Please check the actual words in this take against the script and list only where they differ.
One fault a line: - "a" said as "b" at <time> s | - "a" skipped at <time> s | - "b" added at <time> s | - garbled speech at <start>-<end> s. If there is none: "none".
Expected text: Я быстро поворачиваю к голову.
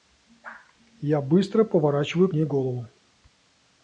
- "ней" added at 2.3 s